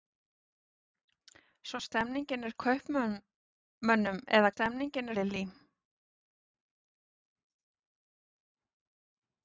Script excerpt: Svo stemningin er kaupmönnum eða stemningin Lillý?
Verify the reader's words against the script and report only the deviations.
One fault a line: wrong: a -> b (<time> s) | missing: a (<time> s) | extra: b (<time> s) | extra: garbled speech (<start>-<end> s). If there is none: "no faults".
no faults